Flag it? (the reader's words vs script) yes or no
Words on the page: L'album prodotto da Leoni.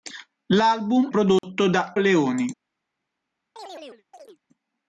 no